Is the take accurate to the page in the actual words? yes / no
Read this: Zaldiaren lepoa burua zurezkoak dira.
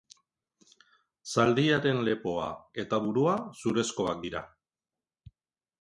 no